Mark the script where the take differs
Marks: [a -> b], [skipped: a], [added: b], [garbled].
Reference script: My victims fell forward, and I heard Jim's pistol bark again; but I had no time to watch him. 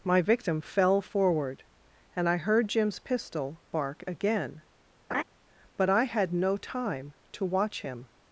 My [victims -> victim] fell forward, and I heard Jim's pistol bark again; but I had no time to watch him.